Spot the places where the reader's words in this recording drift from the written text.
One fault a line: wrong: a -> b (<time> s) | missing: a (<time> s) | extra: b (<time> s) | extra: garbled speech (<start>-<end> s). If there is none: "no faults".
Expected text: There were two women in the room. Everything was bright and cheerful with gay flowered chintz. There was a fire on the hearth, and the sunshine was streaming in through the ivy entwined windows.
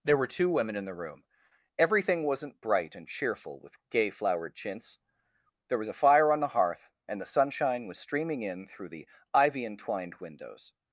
wrong: was -> wasn't (2.2 s)